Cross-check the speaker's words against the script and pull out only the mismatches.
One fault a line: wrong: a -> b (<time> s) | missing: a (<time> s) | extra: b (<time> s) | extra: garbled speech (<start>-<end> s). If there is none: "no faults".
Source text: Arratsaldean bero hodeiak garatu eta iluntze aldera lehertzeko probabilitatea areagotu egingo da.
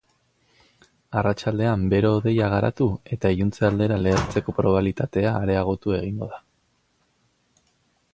no faults